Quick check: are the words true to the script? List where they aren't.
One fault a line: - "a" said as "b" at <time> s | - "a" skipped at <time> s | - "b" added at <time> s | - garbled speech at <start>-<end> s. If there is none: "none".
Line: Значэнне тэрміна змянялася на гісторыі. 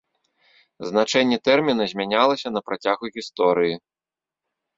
- "працягу" added at 2.7 s